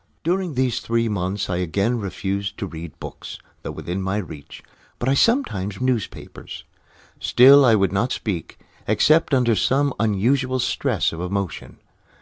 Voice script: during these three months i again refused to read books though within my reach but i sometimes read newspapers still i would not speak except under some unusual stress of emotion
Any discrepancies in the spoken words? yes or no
yes